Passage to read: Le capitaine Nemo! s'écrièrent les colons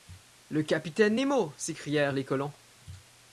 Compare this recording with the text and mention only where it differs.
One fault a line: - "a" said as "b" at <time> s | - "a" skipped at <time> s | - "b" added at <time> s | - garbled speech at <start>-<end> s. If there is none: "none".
none